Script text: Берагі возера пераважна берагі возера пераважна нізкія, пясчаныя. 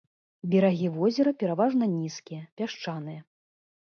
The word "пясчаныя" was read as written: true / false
true